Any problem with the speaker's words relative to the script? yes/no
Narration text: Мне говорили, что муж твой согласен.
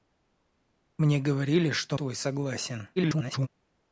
yes